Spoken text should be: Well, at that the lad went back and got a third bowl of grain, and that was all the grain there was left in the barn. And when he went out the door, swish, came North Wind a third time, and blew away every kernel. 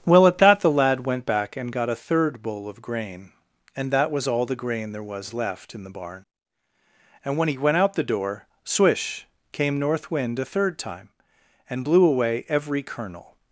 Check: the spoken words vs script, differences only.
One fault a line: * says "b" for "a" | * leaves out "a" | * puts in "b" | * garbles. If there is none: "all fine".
all fine